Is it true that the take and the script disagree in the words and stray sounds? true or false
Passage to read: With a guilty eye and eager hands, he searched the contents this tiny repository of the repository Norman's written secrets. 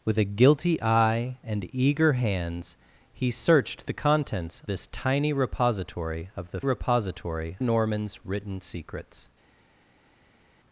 false